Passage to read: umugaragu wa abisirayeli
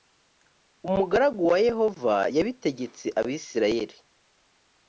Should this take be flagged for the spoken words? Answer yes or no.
yes